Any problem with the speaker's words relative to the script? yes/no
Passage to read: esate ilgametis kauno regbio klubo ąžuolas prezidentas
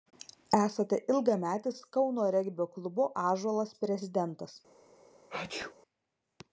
no